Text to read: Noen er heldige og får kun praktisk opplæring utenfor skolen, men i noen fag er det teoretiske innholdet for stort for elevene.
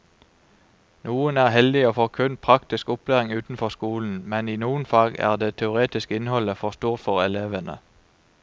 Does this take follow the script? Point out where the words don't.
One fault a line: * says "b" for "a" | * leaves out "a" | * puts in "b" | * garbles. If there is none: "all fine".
all fine